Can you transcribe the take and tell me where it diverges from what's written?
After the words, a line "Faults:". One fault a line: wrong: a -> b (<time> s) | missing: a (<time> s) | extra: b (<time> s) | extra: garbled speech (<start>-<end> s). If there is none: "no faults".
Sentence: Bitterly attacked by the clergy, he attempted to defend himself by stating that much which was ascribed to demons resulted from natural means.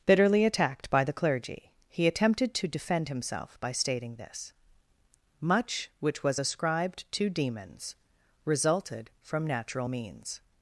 Bitterly attacked by the clergy, he attempted to defend himself by stating this much which was ascribed to demons resulted from natural means.
Faults:
wrong: that -> this (4.2 s)